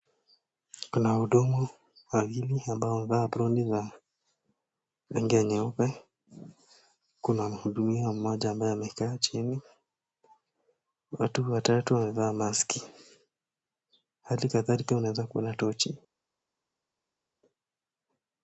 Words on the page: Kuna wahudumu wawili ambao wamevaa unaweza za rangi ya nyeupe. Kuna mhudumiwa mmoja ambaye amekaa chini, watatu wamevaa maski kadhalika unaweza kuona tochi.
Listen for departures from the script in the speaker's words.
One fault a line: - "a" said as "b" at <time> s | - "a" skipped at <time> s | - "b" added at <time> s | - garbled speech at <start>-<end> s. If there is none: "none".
- "unaweza" said as "aproni" at 3.2 s
- "watu" added at 11.1 s
- "hali" added at 14.2 s